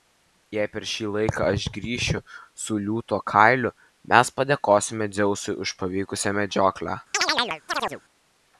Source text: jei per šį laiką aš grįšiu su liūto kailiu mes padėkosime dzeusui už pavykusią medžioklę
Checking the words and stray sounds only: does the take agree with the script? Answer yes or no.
no